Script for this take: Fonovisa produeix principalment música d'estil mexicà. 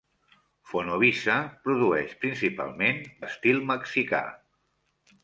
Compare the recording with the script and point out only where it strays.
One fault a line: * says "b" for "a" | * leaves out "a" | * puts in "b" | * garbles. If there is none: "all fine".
* leaves out "música"